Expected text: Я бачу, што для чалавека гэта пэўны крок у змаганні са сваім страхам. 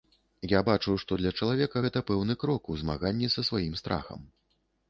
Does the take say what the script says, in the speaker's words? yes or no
yes